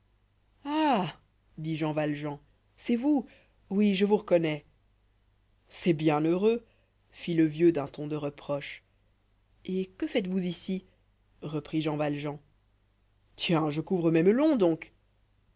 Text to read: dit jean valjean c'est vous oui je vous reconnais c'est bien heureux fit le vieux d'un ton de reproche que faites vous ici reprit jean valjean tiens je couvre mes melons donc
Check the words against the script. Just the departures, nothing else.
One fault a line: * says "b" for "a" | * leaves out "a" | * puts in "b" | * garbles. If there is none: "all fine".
* puts in "et"